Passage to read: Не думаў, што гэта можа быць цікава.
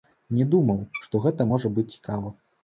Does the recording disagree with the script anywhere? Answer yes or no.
no